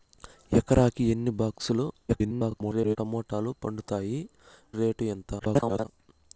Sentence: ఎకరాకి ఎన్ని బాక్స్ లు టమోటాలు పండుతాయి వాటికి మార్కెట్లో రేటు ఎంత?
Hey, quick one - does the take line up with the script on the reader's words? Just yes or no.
no